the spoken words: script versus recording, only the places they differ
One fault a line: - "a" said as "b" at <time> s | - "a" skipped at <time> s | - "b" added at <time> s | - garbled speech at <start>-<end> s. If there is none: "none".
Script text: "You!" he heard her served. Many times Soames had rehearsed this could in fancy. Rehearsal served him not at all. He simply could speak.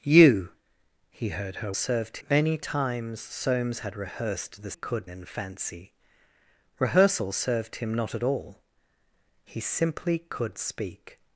none